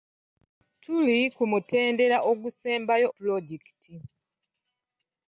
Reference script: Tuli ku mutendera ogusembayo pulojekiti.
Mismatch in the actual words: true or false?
false